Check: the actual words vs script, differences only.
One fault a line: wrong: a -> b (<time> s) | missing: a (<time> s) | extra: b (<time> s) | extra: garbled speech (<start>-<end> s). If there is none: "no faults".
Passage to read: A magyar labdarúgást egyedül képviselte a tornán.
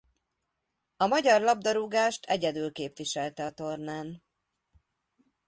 no faults